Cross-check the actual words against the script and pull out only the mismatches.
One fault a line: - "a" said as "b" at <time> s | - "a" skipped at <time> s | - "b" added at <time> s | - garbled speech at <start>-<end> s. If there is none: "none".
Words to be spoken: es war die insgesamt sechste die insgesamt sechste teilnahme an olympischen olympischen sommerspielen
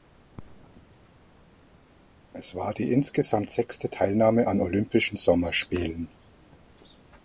- "die insgesamt sechste" skipped at 3.9 s
- "olympischen" skipped at 5.2 s